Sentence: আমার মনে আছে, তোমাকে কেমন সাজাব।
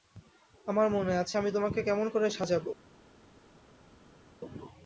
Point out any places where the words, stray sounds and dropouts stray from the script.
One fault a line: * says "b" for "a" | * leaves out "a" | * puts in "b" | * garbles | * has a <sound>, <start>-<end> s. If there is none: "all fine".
* puts in "আমি"
* puts in "করে"